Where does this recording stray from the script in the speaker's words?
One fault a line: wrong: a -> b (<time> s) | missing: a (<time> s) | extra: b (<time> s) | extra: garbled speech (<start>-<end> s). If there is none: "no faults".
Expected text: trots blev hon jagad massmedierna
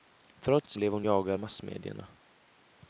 no faults